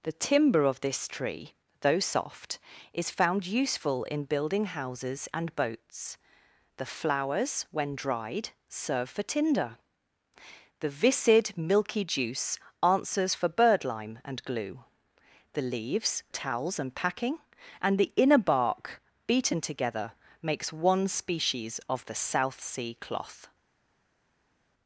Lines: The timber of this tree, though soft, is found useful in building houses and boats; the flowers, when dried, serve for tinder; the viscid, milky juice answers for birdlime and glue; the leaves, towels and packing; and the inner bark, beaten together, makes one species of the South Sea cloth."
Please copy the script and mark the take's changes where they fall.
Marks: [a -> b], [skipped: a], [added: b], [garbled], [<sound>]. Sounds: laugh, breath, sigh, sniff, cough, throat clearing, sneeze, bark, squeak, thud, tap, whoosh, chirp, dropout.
The timber of this tree, though soft, is found useful in building houses and boats; the flowers, when dried, serve for tinder; the viscid, milky juice answers for birdlime and glue; the leaves, towels and packing; and the inner bark, beaten together, makes one species of the South Sea cloth."